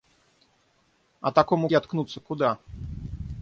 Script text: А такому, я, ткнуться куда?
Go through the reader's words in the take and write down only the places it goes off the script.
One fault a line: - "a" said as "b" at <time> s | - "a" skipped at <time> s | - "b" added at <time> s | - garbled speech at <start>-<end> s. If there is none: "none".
none